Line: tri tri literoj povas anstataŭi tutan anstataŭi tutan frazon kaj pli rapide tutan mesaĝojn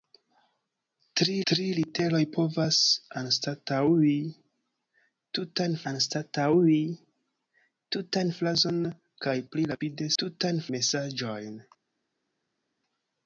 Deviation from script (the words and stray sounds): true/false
false